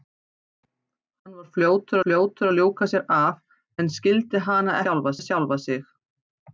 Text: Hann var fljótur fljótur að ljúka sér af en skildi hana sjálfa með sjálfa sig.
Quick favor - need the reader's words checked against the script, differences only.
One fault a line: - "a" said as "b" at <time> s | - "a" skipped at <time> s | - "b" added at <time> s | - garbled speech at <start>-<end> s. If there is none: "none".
none